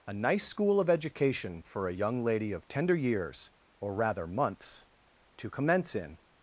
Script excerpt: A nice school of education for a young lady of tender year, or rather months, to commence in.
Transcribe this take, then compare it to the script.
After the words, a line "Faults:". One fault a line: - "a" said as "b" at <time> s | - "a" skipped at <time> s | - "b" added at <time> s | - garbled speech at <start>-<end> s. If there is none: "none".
A nice school of education for a young lady of tender years, or rather months, to commence in.
Faults:
- "year" said as "years" at 2.9 s